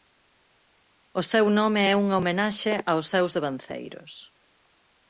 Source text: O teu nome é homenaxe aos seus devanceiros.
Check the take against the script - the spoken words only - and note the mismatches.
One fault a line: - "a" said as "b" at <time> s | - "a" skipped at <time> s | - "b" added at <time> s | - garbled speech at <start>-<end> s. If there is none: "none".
- "teu" said as "seu" at 1.3 s
- "unha" added at 2.0 s